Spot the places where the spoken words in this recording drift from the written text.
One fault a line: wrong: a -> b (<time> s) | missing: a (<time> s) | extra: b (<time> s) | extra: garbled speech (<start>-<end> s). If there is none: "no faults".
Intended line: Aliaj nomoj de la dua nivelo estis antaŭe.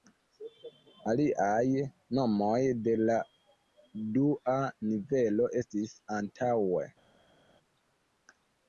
no faults